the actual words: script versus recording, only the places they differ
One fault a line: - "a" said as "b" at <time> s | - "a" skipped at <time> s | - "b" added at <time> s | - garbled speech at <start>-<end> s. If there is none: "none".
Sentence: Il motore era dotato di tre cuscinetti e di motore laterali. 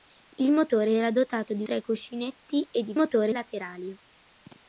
none